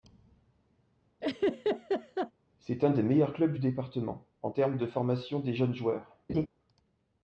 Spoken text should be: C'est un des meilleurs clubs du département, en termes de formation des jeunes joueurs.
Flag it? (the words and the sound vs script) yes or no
yes